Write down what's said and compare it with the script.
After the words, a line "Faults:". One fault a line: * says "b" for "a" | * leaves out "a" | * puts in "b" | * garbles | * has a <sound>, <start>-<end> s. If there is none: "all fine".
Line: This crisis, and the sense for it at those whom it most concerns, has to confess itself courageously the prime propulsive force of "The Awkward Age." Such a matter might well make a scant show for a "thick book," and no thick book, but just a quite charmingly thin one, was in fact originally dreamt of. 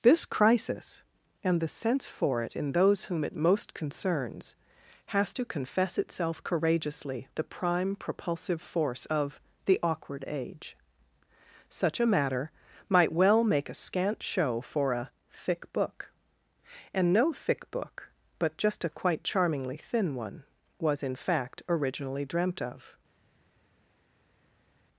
This crisis, and the sense for it in those whom it most concerns, has to confess itself courageously the prime propulsive force of "The Awkward Age." Such a matter might well make a scant show for a "thick book," and no thick book, but just a quite charmingly thin one, was in fact originally dreamt of.
Faults:
* says "in" for "at"